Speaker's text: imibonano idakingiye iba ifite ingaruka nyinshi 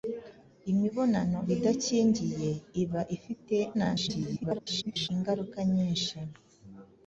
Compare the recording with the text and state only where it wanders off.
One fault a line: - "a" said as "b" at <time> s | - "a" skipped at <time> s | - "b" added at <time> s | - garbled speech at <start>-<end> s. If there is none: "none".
- garbled speech at 3.7-5.1 s